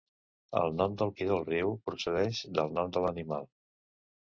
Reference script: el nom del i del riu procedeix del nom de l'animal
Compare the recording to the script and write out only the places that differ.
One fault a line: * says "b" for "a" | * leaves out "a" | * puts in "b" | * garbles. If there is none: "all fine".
all fine